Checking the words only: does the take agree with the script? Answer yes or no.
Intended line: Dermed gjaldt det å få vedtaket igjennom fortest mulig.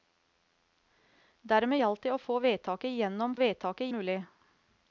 no